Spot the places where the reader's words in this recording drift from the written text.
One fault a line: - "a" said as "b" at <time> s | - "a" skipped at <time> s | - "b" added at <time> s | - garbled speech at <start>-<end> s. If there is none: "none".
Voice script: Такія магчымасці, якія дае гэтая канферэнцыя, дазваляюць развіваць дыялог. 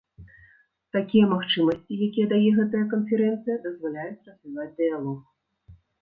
none